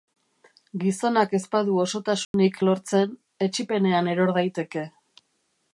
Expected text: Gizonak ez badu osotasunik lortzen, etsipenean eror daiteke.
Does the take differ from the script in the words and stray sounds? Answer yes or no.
yes